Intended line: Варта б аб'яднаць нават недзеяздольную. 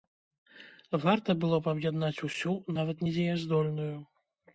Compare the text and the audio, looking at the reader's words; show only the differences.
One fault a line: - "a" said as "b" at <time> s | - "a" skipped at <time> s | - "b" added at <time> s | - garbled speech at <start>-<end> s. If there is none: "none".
- "было" added at 1.4 s
- "усю" added at 2.3 s